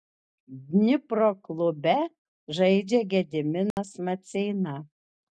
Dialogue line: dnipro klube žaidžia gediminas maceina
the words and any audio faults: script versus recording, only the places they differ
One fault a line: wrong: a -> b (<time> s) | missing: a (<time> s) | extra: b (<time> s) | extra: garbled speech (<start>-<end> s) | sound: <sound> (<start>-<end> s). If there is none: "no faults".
sound: dropout (3.7-3.8 s)